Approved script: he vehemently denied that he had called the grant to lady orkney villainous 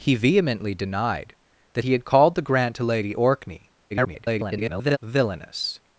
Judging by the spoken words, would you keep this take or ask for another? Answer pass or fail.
fail